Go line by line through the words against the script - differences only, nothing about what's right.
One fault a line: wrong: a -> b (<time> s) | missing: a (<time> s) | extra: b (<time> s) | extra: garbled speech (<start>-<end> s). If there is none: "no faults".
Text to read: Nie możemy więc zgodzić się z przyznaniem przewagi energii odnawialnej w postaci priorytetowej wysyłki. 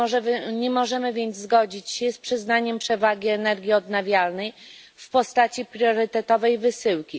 no faults